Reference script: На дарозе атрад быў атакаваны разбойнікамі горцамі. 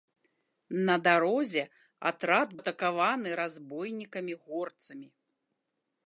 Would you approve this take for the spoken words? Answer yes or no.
no